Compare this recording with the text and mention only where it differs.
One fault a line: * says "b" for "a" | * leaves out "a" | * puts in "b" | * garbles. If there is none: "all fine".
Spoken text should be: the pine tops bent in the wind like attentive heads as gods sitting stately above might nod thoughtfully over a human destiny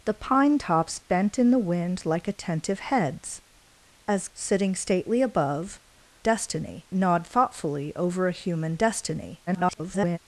* leaves out "gods"
* says "destiny" for "might"
* garbles